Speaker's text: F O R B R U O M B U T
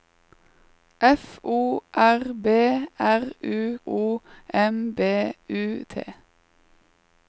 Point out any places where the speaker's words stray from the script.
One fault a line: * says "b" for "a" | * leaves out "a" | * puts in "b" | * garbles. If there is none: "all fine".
all fine